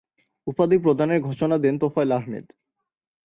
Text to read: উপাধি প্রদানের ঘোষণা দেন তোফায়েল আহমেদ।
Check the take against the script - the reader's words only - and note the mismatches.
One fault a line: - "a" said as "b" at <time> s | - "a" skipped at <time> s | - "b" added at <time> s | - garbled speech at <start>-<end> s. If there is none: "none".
none